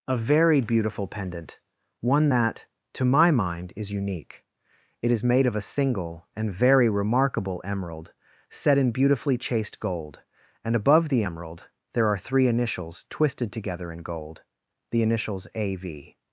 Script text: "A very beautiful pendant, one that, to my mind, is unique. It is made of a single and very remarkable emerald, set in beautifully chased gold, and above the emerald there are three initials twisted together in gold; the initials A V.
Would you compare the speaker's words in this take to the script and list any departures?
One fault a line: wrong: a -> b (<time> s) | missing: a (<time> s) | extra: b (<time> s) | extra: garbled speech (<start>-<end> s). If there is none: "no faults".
no faults